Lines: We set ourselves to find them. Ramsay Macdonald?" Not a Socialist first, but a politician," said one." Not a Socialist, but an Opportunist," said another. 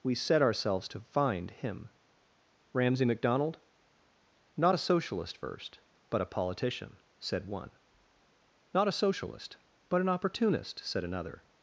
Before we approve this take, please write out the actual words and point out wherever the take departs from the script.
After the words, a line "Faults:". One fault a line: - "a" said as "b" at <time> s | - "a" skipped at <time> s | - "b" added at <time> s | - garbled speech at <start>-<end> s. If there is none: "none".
We set ourselves to find him. Ramsay Macdonald?" Not a Socialist first, but a politician," said one." Not a Socialist, but an Opportunist," said another.
Faults:
- "them" said as "him" at 1.5 s